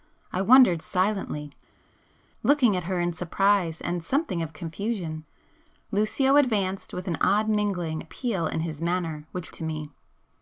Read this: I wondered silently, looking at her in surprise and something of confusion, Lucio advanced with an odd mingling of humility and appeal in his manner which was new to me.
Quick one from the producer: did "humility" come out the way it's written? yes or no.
no